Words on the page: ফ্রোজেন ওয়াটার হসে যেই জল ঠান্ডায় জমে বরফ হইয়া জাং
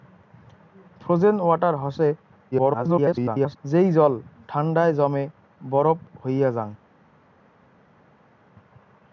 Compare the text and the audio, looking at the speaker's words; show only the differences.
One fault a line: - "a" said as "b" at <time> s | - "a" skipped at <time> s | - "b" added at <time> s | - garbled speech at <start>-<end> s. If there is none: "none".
- garbled speech at 2.5-3.6 s